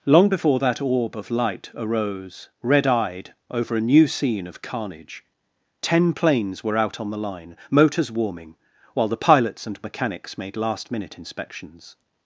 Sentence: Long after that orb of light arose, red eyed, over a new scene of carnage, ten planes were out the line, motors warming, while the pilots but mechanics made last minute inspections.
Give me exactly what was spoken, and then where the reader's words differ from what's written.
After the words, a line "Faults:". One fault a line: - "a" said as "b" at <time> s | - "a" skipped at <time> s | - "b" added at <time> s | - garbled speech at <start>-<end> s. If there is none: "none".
Long before that orb of light arose, red eyed, over a new scene of carnage, ten planes were out on the line, motors warming, while the pilots and mechanics made last minute inspections.
Faults:
- "after" said as "before" at 0.3 s
- "on" added at 7.0 s
- "but" said as "and" at 9.7 s